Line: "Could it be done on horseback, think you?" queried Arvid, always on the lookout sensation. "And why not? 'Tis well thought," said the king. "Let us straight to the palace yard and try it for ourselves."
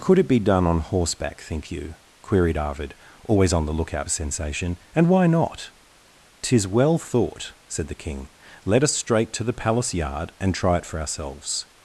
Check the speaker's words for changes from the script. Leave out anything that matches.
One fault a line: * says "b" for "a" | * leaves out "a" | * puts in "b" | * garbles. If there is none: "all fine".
all fine